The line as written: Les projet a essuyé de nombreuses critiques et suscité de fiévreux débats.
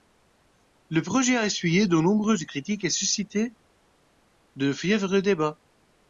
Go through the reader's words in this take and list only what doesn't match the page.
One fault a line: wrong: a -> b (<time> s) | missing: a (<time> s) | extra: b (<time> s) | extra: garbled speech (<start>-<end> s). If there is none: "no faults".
wrong: Les -> Le (0.9 s)